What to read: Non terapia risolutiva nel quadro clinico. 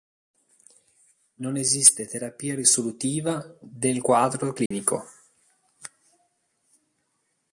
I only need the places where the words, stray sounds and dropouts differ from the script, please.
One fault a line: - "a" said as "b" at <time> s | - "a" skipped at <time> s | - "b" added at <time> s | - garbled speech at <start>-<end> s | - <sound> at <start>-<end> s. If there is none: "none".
- "esiste" added at 1.6 s
- "nel" said as "del" at 3.6 s
- dropout at 4.7-4.7 s